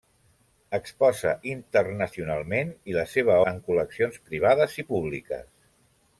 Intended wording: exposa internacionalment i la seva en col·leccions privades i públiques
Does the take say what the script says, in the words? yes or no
yes